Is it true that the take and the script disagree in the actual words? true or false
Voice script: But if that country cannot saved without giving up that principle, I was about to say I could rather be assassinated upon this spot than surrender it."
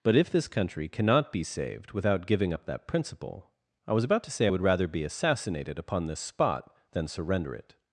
true